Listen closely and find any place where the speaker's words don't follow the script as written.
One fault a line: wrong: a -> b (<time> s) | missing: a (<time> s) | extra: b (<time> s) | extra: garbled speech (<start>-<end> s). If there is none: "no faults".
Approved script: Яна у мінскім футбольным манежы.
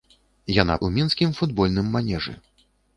no faults